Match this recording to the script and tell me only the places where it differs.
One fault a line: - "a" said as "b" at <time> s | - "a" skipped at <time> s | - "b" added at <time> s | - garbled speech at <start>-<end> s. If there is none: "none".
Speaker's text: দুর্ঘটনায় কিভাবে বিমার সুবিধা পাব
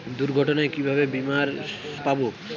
- "সুবিধা" skipped at 1.5 s